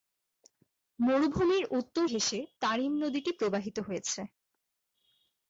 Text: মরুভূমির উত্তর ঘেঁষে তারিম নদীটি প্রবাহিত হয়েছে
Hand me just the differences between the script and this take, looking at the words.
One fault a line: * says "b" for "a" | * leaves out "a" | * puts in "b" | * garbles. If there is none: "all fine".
all fine